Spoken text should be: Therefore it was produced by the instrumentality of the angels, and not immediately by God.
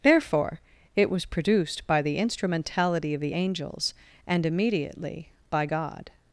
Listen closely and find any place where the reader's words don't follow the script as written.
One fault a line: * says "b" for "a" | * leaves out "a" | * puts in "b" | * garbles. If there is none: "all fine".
* leaves out "not"